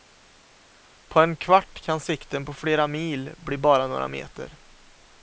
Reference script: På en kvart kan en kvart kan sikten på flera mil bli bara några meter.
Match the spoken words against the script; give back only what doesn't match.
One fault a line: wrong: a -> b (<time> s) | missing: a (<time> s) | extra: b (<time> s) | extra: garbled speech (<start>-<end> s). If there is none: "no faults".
missing: en kvart kan (2.0 s)